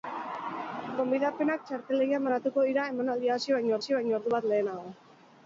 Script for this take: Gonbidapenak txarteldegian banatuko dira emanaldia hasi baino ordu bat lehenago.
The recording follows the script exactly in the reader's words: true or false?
false